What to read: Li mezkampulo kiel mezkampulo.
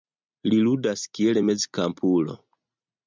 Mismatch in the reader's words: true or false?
true